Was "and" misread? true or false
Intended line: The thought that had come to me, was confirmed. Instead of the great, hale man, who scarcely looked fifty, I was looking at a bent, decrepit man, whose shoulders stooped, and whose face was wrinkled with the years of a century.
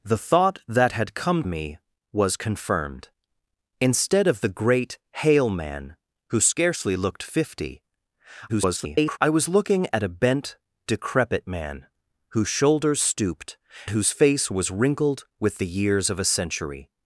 true